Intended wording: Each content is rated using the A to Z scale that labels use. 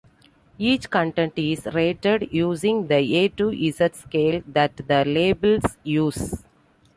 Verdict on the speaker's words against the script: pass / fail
fail